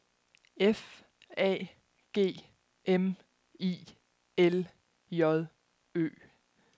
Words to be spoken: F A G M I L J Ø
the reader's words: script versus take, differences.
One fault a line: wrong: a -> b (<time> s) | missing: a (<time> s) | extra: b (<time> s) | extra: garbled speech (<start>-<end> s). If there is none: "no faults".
no faults